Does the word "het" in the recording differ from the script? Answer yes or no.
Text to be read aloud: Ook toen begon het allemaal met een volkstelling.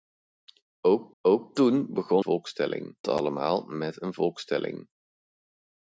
yes